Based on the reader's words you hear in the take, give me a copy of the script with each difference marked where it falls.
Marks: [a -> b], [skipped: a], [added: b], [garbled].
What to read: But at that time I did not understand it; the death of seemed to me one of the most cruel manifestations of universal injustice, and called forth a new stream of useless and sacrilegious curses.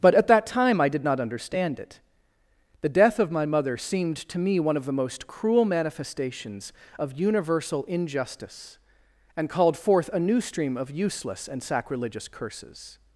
But at that time I did not understand it; the death of [added: my mother] seemed to me one of the most cruel manifestations of universal injustice, and called forth a new stream of useless and sacrilegious curses.